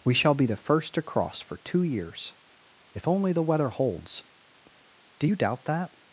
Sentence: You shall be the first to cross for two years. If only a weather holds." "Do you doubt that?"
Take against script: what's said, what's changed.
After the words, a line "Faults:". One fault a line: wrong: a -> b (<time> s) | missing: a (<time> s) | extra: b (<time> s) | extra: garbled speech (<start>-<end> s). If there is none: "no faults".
We shall be the first to cross for two years. If only the weather holds." "Do you doubt that?"
Faults:
wrong: You -> We (0.0 s)
wrong: a -> the (3.3 s)